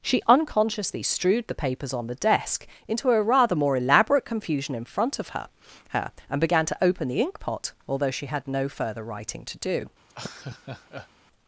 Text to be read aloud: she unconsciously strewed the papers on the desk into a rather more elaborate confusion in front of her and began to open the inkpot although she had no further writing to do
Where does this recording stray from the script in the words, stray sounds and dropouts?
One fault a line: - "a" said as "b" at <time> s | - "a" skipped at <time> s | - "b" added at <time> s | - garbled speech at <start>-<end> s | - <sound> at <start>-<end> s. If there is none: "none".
- "her" added at 5.9 s
- laugh at 10.1-11.1 s